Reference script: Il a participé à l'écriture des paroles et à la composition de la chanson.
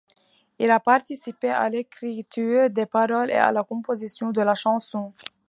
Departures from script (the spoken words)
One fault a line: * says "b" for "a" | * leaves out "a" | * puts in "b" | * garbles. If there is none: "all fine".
all fine